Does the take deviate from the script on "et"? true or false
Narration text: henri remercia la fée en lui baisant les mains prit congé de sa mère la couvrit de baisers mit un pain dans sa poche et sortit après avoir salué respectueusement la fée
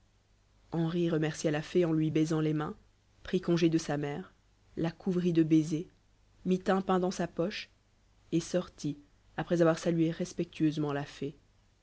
false